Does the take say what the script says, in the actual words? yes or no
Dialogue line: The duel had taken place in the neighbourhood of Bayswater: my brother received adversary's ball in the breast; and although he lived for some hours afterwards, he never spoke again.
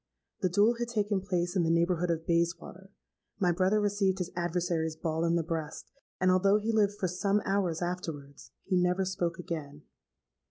no